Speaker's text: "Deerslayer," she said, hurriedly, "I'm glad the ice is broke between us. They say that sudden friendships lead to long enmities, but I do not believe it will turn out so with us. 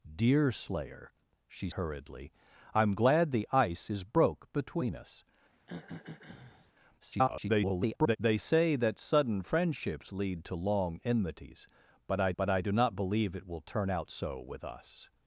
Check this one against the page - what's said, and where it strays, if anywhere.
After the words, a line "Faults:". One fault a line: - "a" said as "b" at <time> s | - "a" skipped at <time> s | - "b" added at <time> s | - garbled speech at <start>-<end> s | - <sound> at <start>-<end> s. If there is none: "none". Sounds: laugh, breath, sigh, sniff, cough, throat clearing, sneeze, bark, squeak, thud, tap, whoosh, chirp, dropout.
"Deerslayer," she hurriedly, "I'm glad the ice is broke between us. [garbled] They say that sudden friendships lead to long enmities, but I but I do not believe it will turn out so with us.
Faults:
- "said" skipped at 1.7 s
- throat clearing at 5.5-6.7 s
- garbled speech at 7.0-8.2 s
- "but I" added at 12.4 s